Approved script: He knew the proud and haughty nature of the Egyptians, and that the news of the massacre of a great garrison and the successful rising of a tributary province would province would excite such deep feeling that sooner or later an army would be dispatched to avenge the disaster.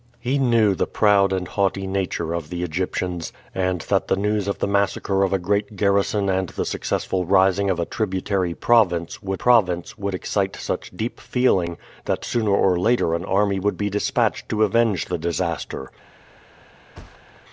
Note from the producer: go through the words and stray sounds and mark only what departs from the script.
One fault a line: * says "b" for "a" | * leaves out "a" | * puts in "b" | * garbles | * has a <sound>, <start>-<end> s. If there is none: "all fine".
* has a thud, 16.9-17.4 s